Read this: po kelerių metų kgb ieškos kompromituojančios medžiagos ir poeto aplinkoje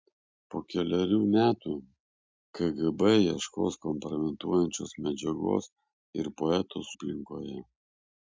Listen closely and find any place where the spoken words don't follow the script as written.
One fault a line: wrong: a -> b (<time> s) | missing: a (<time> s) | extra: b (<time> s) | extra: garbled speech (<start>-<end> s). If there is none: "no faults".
no faults